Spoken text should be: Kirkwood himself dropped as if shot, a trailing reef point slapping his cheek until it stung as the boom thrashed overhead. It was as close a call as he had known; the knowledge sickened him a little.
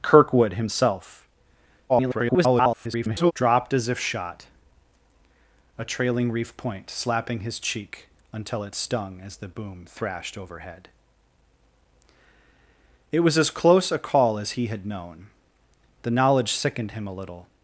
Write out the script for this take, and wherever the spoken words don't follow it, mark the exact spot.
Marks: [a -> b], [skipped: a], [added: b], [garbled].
Kirkwood himself [garbled] dropped as if shot, a trailing reef point slapping his cheek until it stung as the boom thrashed overhead. It was as close a call as he had known; the knowledge sickened him a little.